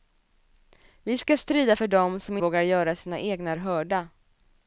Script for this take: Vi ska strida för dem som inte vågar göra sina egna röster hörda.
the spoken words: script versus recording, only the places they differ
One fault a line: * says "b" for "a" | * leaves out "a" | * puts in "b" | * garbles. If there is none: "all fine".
* leaves out "inte"
* leaves out "röster"